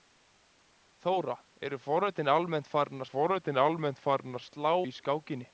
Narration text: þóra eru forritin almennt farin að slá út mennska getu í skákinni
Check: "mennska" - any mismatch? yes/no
yes